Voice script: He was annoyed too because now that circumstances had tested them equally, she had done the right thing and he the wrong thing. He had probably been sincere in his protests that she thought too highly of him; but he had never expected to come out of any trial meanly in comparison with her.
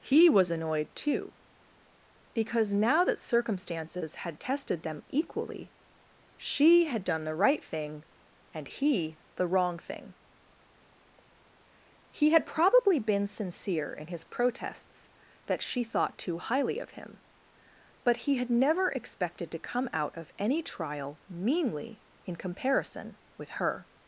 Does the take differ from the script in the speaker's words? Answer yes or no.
no